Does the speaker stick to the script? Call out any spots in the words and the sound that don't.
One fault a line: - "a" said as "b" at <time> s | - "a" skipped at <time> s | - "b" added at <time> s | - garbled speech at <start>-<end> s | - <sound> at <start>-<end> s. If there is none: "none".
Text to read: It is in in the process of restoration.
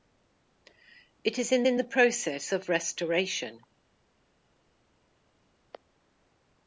none